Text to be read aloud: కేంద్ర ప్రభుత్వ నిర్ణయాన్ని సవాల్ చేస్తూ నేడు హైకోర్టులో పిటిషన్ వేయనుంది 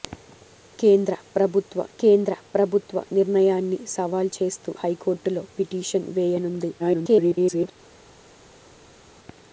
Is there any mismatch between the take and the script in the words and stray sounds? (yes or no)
yes